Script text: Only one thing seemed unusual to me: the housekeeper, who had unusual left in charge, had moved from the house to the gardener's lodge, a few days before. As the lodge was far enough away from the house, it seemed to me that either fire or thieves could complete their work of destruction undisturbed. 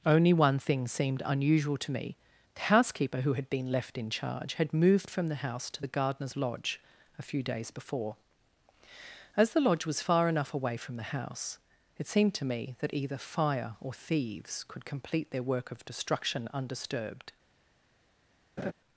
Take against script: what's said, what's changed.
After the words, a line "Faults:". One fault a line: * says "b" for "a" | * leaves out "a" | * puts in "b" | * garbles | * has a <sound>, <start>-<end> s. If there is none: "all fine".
Only one thing seemed unusual to me: the housekeeper, who had been left in charge, had moved from the house to the gardener's lodge, a few days before. As the lodge was far enough away from the house, it seemed to me that either fire or thieves could complete their work of destruction undisturbed.
Faults:
* says "been" for "unusual"
* has a laugh, 18.6-18.7 s